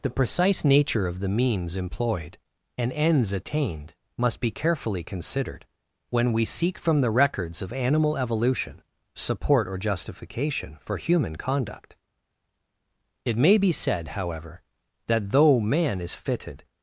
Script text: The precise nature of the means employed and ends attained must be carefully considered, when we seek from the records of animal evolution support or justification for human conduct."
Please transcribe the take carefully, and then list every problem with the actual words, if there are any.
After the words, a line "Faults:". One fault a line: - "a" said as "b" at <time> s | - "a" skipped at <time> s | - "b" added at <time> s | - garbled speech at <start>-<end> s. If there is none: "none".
The precise nature of the means employed and ends attained must be carefully considered, when we seek from the records of animal evolution support or justification for human conduct." It may be said, however, that though man is fitted
Faults:
- "It may be said however that though man is fitted" added at 13.2 s